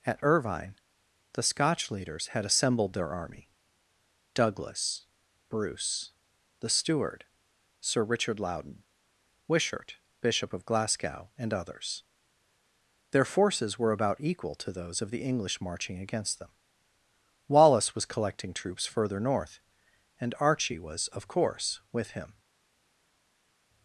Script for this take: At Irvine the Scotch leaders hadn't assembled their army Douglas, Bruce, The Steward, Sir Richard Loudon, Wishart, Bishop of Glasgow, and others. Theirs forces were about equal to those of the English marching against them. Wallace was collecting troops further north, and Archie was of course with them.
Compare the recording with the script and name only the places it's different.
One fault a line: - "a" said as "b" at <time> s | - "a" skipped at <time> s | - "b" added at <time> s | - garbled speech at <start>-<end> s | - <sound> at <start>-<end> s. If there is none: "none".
- "hadn't" said as "had" at 2.3 s
- "Theirs" said as "Their" at 13.1 s
- "them" said as "him" at 22.1 s